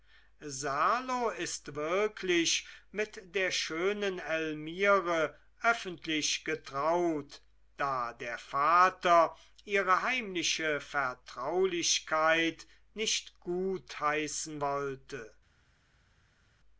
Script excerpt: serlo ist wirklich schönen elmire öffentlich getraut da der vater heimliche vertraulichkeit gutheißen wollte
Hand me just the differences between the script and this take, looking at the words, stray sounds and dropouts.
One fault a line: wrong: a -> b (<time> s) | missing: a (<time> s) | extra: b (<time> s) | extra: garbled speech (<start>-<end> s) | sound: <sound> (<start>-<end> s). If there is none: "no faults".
extra: mit der (2.9 s)
extra: ihre (9.7 s)
extra: nicht (12.9 s)